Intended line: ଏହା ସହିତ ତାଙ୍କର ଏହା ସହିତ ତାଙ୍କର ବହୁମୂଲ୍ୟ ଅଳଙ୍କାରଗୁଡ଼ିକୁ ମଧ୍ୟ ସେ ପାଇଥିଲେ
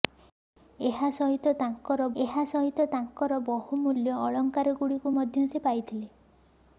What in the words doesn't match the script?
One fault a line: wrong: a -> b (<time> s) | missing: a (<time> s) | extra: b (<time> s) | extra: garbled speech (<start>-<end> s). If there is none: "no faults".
no faults